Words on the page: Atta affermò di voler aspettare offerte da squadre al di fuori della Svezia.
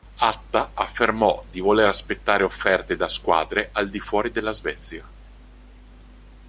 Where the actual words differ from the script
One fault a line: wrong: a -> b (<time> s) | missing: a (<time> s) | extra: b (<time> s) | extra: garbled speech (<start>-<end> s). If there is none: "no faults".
no faults